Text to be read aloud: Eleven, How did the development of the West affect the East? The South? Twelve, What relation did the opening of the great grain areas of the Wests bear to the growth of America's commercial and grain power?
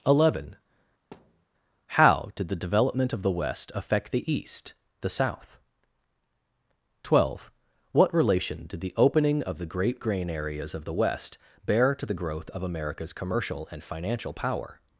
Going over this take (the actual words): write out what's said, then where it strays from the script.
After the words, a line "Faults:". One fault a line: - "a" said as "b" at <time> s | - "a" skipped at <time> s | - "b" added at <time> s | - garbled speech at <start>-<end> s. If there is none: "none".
Eleven, How did the development of the West affect the East? The South? Twelve, What relation did the opening of the great grain areas of the West bear to the growth of America's commercial and financial power?
Faults:
- "Wests" said as "West" at 10.9 s
- "grain" said as "financial" at 13.8 s